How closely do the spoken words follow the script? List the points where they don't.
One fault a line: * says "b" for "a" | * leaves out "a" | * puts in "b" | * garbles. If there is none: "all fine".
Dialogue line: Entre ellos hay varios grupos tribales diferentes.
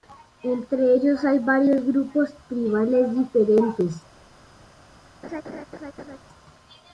all fine